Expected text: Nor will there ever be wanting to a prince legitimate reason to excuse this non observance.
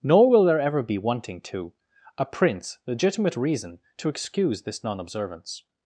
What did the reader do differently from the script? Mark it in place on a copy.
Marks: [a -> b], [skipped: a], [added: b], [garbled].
Nor will there ever be wanting to a prince legitimate reason to excuse this non observance.